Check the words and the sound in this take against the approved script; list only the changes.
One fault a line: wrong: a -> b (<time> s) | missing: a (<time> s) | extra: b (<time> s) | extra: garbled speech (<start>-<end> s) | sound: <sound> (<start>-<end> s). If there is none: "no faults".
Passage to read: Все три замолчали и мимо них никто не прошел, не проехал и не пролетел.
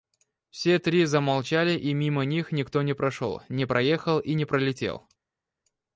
no faults